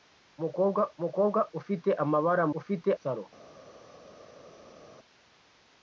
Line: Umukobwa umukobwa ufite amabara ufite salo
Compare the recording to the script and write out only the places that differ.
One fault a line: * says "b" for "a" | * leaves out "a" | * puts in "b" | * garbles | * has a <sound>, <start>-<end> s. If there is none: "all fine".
all fine